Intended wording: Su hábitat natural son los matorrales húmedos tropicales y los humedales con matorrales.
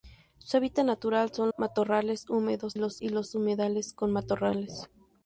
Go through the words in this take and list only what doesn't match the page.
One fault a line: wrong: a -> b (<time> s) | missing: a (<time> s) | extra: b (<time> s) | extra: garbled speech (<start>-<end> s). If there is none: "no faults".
missing: los (1.5 s)
wrong: tropicales -> los (2.7 s)